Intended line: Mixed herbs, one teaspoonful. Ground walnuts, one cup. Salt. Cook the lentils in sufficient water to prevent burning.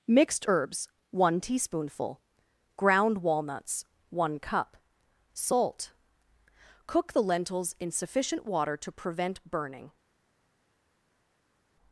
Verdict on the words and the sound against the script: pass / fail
pass